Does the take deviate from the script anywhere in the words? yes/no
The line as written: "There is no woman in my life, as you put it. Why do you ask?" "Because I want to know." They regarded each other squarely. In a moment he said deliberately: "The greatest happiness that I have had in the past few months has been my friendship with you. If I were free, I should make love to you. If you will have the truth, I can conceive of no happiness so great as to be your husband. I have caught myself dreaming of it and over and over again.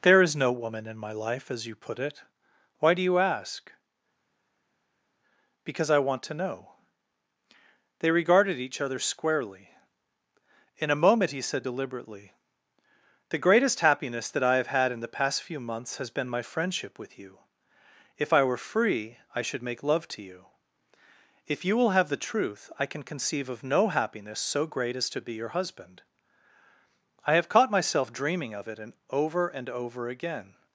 no